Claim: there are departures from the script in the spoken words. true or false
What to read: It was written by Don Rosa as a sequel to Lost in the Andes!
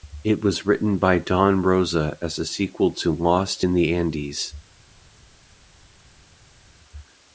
false